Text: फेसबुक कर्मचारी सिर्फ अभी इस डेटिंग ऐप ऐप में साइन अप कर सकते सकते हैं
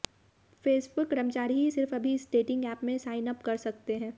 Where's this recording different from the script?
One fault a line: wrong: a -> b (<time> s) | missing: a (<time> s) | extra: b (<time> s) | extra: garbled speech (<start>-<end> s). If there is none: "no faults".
extra: ही (1.5 s)
missing: ऐप (2.8 s)
missing: सकते (4.0 s)